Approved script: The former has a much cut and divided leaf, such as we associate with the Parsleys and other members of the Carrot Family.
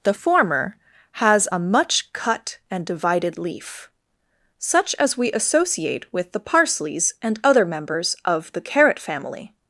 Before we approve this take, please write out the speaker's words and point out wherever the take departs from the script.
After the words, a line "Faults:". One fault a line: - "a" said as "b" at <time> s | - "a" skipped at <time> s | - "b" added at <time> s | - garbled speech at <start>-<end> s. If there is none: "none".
The former has a much cut and divided leaf, such as we associate with the Parsleys and other members of the Carrot Family.
Faults:
none